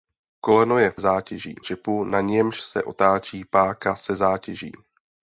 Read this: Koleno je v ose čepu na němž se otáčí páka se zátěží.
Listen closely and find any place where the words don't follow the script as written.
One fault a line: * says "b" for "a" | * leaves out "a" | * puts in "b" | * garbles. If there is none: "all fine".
* says "zátěží" for "ose"